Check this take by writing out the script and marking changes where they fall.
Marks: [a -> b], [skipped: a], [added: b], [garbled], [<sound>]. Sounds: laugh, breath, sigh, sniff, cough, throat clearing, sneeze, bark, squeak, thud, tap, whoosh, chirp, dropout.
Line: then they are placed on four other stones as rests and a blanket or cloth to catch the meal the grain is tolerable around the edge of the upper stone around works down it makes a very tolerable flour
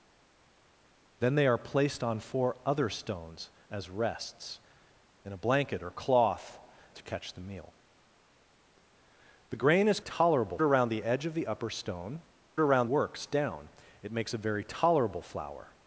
then they are placed on four other stones as rests and a blanket or cloth to catch the meal the grain is tolerable around the edge of the upper stone around works down it makes a very tolerable flour